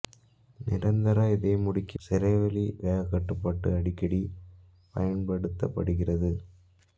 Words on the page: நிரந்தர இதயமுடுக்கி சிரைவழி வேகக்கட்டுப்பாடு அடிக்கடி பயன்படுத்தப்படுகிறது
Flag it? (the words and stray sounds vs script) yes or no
no